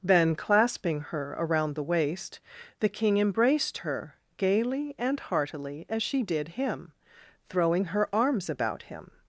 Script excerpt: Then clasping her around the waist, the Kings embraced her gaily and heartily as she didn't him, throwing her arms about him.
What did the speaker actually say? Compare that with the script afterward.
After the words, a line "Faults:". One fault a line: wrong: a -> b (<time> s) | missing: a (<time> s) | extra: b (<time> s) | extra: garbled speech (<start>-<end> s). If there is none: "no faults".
Then clasping her around the waist, the King embraced her gaily and heartily as she did him, throwing her arms about him.
Faults:
wrong: Kings -> King (2.9 s)
wrong: didn't -> did (6.2 s)